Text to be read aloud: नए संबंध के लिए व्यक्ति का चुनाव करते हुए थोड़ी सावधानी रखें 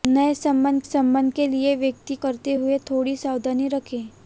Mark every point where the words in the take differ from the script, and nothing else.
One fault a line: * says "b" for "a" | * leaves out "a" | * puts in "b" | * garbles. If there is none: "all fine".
* puts in "संबंध"
* leaves out "का चुनाव"